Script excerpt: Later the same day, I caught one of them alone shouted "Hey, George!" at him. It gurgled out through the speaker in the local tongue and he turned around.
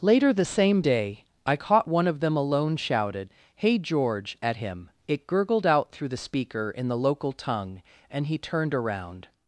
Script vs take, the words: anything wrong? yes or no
no